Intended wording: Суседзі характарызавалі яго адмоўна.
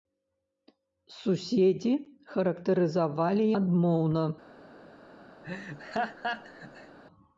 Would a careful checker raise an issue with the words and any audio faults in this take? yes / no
yes